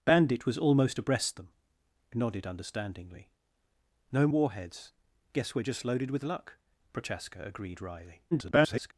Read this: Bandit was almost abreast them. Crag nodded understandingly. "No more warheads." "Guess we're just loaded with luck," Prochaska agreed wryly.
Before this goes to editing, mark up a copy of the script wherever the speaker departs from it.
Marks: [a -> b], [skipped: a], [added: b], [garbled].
Bandit was almost abreast them. [skipped: Crag] nodded understandingly. "No [skipped: more] warheads." "Guess we're just loaded with luck," Prochaska agreed wryly. [garbled]